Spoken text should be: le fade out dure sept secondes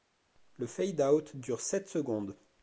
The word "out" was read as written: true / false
true